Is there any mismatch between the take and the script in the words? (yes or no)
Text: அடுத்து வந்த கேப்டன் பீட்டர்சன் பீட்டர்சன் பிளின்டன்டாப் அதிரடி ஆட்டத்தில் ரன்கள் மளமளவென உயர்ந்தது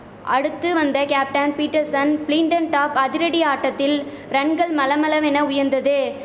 yes